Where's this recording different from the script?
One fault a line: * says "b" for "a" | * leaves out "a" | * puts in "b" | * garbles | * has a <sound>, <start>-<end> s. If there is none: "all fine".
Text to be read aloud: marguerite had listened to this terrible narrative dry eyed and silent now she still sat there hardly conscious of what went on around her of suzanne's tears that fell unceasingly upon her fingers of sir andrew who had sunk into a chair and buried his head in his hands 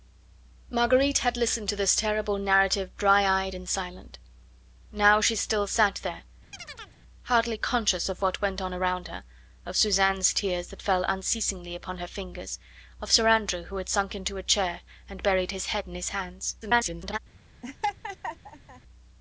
* has a chirp, 6.5-7.0 s
* garbles
* has a laugh, 17.6-18.8 s